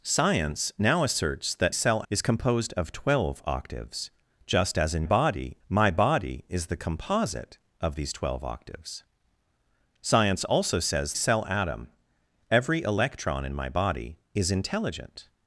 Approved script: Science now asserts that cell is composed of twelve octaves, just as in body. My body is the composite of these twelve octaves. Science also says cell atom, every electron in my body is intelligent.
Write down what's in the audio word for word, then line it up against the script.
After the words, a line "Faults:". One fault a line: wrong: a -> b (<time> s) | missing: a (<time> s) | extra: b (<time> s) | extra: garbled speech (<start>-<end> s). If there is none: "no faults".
Science now asserts that cell is composed of twelve octaves, just as in body. My body is the composite of these twelve octaves. Science also says cell atom, every electron in my body is intelligent.
Faults:
no faults